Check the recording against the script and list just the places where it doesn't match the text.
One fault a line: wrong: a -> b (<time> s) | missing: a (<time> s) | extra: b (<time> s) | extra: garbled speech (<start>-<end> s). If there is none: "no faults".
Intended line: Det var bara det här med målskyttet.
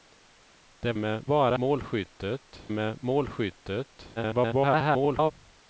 wrong: var -> med (1.0 s)
wrong: här -> målskyttet (1.6 s)
extra: garbled speech (4.2-5.3 s)